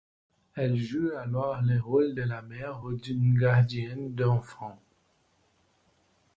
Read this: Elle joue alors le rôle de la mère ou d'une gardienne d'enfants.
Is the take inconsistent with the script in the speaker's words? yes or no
no